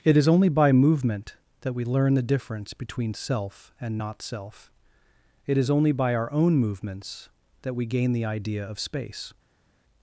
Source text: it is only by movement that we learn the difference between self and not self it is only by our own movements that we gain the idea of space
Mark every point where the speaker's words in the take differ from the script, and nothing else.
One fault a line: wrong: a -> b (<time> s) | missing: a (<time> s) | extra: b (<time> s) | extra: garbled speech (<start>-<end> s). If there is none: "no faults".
no faults